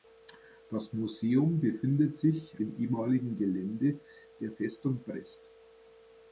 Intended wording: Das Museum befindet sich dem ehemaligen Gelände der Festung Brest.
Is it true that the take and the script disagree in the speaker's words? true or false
false